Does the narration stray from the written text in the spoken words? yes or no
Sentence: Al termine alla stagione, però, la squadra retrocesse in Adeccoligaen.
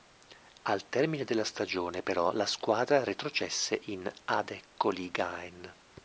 yes